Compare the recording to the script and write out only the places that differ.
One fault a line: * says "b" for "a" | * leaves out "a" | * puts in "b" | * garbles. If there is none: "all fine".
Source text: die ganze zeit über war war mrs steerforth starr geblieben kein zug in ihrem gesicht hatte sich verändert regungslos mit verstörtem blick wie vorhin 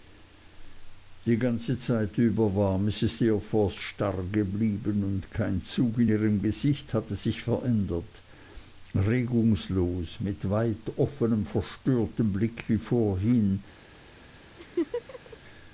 * leaves out "war"
* puts in "und"
* puts in "weit offnem"